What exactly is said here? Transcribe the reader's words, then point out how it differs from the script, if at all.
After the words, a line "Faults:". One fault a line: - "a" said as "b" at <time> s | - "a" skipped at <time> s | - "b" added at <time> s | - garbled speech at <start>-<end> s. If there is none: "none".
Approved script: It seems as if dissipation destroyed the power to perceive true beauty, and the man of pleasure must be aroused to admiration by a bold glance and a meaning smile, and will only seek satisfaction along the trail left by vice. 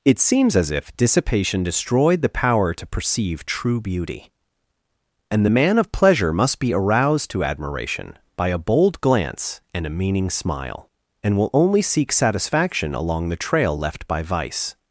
It seems as if dissipation destroyed the power to perceive true beauty, and the man of pleasure must be aroused to admiration by a bold glance and a meaning smile, and will only seek satisfaction along the trail left by vice.
Faults:
none